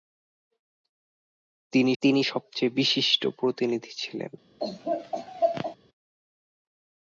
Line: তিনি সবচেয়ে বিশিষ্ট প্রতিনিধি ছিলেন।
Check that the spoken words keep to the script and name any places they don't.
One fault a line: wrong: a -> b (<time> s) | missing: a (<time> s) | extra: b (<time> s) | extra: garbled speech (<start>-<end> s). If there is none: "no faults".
extra: তিনি (2.0 s)